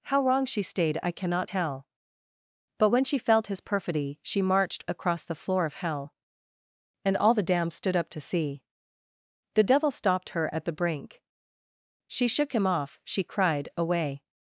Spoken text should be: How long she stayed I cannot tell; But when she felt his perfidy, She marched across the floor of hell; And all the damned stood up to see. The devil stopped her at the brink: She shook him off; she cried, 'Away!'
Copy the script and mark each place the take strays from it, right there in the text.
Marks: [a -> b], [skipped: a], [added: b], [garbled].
How [long -> wrong] she stayed I cannot tell; But when she felt his perfidy, She marched across the floor of hell; And all the damned stood up to see. The devil stopped her at the brink: She shook him off; she cried, 'Away!'